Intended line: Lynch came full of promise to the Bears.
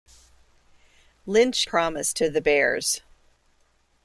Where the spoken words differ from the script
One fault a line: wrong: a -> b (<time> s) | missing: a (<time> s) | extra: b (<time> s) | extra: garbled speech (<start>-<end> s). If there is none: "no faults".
missing: came full of (1.7 s)